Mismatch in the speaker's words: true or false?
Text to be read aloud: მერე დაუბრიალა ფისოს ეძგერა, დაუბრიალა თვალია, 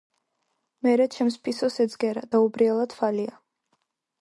true